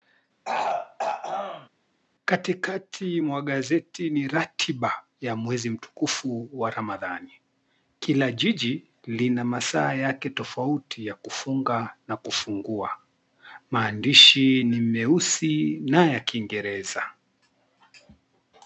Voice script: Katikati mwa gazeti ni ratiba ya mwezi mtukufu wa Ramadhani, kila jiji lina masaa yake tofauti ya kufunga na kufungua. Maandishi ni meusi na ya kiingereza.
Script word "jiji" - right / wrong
right